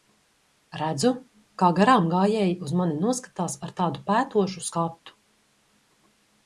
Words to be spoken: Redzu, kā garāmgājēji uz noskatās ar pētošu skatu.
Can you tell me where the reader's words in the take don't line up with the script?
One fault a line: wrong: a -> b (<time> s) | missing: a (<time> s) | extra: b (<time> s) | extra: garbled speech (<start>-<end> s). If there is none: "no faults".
extra: mani (2.8 s)
extra: tādu (3.8 s)